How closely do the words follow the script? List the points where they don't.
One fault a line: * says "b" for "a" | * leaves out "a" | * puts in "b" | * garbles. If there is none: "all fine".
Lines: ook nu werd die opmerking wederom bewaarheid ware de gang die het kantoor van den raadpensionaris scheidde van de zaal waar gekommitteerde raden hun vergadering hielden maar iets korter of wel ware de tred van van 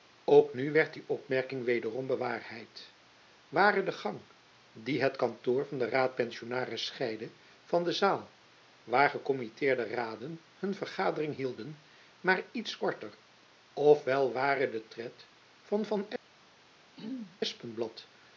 all fine